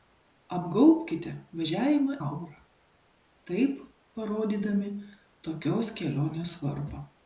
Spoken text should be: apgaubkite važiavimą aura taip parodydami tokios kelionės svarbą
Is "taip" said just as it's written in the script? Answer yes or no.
yes